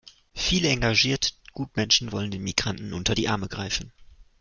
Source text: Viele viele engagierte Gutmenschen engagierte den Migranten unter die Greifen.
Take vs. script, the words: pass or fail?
fail